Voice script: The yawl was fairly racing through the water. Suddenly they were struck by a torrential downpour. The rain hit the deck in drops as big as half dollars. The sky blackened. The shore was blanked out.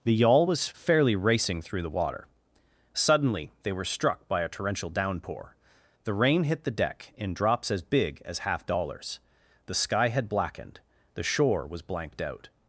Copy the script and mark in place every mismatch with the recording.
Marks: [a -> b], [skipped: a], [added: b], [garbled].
The yawl was fairly racing through the water. Suddenly they were struck by a torrential downpour. The rain hit the deck in drops as big as half dollars. The sky [added: had] blackened. The shore was blanked out.